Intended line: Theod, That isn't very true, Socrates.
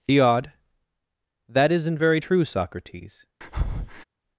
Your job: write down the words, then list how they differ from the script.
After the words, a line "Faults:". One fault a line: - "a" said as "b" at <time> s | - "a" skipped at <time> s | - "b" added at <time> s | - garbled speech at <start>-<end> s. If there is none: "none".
Theod, That isn't very true, Socrates.
Faults:
none